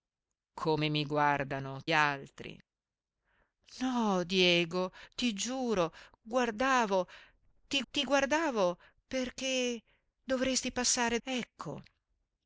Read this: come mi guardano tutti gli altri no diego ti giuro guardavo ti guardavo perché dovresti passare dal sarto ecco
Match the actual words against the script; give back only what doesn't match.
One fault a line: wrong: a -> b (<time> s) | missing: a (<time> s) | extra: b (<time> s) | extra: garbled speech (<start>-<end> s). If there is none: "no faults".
missing: tutti gli (1.8 s)
extra: ti (7.9 s)
missing: dal sarto (11.2 s)